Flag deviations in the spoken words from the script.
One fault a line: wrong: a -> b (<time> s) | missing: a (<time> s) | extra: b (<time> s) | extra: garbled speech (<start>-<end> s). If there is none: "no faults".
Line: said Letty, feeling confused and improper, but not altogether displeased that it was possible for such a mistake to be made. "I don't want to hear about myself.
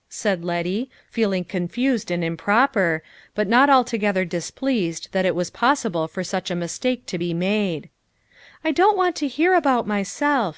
no faults